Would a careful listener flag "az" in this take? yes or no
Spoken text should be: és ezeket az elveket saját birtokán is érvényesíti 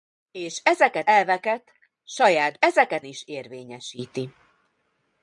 yes